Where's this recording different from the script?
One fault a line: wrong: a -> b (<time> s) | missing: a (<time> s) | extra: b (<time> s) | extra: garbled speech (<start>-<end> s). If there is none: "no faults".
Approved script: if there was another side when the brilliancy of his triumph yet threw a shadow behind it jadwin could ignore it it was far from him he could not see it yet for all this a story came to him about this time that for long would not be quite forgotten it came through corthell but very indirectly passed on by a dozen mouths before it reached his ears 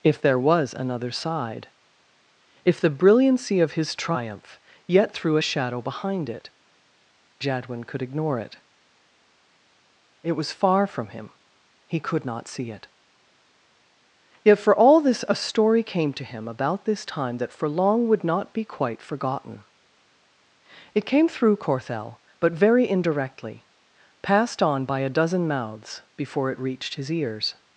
wrong: when -> if (2.6 s)